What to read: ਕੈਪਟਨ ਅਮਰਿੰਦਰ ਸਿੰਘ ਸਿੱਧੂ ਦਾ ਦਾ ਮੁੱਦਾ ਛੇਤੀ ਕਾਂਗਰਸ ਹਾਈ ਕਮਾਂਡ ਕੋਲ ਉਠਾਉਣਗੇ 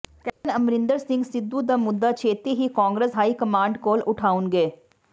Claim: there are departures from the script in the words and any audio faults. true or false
true